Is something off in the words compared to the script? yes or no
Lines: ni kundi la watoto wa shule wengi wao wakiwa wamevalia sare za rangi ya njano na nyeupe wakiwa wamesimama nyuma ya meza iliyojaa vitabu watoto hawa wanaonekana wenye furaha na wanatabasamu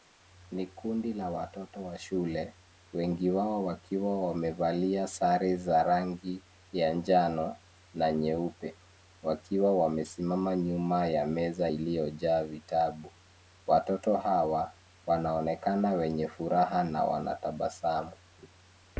no